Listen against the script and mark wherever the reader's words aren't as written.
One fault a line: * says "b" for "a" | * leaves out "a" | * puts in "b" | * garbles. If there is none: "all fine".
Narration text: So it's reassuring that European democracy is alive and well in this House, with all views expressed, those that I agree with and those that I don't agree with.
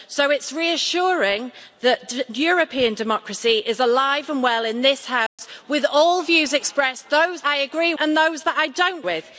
* leaves out "that"
* leaves out "with"
* leaves out "agree"